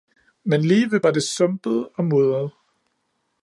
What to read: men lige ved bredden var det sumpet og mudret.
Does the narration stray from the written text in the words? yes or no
yes